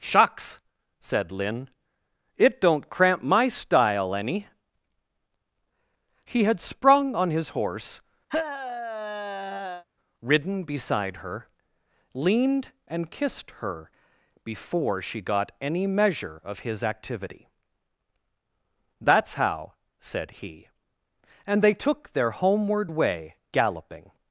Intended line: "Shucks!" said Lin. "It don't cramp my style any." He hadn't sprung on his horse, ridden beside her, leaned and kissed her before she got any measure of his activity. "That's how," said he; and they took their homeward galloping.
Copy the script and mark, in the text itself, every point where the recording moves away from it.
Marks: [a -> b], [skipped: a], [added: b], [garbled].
"Shucks!" said Lin. "It don't cramp my style any." He [hadn't -> had] sprung on his horse, ridden beside her, leaned and kissed her before she got any measure of his activity. "That's how," said he; and they took their homeward [added: way] galloping.